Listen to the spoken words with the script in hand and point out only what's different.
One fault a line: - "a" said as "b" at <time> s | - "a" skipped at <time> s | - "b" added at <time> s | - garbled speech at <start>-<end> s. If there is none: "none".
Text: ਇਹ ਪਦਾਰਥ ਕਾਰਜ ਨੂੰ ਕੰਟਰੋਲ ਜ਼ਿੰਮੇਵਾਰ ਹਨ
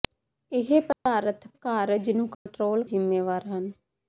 none